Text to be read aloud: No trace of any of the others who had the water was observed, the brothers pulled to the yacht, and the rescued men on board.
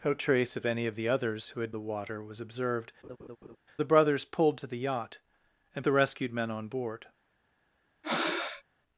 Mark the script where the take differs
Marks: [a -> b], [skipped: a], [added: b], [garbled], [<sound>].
No trace of any of the others who had the water was observed, [laugh] the brothers pulled to the yacht, and the rescued men on board. [breath]